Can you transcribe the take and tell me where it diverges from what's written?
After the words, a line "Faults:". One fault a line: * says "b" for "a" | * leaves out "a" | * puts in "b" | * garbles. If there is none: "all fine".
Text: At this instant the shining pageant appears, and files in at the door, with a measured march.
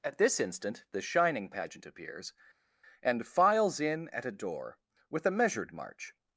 At this instant the shining pageant appears, and files in at a door, with a measured march.
Faults:
* says "a" for "the"